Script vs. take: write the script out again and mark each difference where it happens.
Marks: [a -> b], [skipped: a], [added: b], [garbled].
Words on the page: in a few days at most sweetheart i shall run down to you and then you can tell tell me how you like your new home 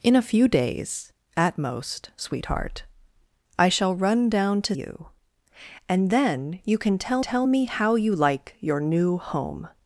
in a few days at most sweetheart i shall run down to you and then you can tell tell me how you like your new home